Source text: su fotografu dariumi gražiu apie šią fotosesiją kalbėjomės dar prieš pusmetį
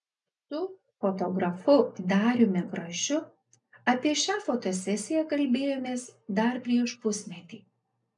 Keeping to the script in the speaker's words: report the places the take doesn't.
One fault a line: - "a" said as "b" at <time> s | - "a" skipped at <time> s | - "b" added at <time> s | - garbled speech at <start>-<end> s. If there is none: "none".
none